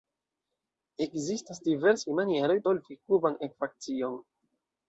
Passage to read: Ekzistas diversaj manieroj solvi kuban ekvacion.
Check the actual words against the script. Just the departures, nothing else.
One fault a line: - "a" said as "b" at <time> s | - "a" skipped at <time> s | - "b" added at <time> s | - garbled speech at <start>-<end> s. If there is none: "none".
none